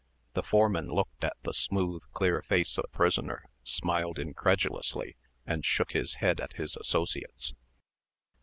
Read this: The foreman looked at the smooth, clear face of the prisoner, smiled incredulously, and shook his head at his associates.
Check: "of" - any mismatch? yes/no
yes